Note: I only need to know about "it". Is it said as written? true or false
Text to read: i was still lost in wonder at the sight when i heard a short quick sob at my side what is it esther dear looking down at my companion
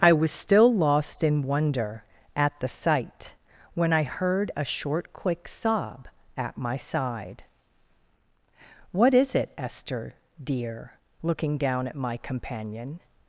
true